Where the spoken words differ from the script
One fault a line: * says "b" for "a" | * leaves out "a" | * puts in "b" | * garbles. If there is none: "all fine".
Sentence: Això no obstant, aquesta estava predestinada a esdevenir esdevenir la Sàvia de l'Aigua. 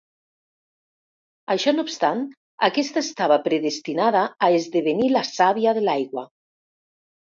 * leaves out "esdevenir"